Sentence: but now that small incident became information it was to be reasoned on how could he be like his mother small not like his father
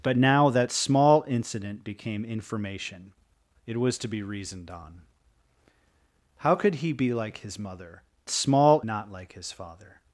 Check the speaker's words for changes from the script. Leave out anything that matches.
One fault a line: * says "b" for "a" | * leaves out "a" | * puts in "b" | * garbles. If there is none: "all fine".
all fine